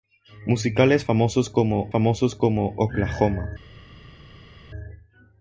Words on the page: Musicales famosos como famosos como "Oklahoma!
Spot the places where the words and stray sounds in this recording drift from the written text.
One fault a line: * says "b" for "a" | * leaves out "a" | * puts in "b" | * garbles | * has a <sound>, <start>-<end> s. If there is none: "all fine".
all fine